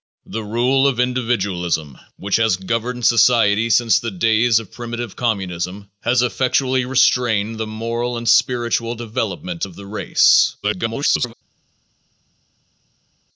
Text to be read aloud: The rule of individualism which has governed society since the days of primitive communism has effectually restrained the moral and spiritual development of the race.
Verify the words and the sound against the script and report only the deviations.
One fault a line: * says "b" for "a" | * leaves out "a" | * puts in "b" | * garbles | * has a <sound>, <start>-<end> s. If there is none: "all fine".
* garbles